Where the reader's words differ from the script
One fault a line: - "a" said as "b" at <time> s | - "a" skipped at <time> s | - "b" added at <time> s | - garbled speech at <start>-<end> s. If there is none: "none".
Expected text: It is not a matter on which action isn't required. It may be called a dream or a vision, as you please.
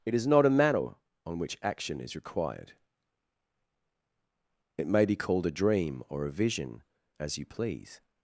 - "isn't" said as "is" at 2.0 s